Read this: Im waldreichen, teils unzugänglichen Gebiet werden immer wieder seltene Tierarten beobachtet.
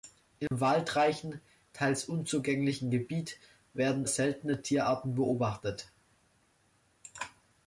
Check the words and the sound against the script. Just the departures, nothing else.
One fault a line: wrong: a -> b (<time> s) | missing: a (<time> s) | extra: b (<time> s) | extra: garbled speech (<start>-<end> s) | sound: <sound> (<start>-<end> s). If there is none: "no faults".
sound: dropout (0.5-0.5 s)
missing: immer wieder (4.1 s)